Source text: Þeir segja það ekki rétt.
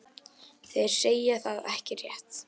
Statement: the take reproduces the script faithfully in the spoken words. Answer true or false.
true